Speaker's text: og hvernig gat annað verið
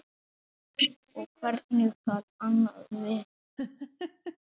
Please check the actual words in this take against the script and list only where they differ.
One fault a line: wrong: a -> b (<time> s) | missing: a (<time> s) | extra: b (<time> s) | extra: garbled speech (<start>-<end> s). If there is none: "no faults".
no faults